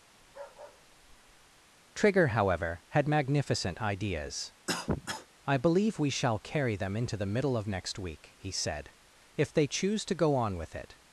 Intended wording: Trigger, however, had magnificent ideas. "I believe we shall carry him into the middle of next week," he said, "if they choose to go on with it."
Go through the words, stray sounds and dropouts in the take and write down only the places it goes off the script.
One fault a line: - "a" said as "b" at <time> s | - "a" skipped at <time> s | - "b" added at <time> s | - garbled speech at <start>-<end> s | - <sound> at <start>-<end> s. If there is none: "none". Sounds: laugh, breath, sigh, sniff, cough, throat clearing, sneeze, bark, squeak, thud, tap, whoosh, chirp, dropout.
- bark at 0.2-1.6 s
- cough at 4.7-5.3 s
- "him" said as "them" at 6.8 s